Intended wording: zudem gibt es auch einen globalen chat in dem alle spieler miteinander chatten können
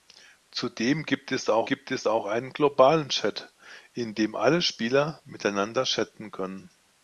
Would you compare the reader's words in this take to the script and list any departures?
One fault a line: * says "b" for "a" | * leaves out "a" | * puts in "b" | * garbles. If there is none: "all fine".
* puts in "gibt es auch"